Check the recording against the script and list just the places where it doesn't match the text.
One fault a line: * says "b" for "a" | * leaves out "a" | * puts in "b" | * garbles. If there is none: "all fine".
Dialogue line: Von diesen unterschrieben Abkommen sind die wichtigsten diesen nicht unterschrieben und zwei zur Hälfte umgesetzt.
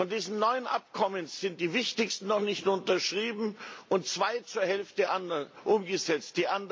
* says "neun" for "unterschrieben"
* says "noch" for "diesen"